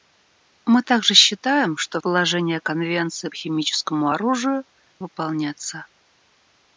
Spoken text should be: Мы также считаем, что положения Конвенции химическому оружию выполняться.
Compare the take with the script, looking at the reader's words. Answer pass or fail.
pass